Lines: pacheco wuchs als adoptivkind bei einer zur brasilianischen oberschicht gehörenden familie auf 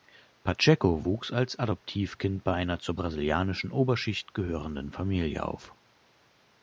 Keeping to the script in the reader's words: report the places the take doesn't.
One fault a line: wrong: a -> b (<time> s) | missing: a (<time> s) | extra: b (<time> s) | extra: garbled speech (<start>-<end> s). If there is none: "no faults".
no faults